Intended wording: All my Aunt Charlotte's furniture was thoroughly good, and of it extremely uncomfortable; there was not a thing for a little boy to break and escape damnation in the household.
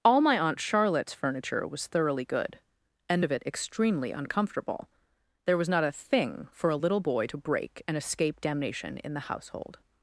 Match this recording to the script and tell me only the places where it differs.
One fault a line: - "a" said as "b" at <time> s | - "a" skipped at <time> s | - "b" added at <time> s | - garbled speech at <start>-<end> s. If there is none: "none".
none